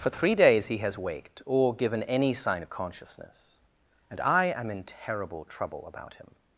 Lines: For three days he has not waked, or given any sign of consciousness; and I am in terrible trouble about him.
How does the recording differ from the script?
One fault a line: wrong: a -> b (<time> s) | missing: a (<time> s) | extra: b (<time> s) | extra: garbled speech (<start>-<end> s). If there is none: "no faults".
missing: not (1.0 s)